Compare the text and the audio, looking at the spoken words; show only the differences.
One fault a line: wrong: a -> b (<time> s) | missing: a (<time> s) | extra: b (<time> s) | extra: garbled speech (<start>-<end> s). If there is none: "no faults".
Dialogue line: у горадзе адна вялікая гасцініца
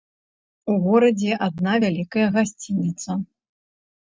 no faults